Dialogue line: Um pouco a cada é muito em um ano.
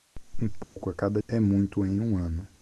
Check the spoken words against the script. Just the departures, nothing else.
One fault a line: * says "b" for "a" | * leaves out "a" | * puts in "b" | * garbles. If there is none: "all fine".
all fine